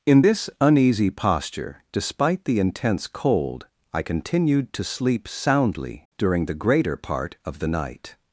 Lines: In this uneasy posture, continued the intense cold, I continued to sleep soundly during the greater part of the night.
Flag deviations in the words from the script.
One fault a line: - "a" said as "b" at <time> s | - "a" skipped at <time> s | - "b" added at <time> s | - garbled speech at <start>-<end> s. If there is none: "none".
- "continued" said as "despite" at 1.9 s